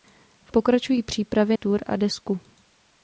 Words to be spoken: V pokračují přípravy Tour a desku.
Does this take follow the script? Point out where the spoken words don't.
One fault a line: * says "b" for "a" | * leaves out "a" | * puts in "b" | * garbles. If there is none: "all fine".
all fine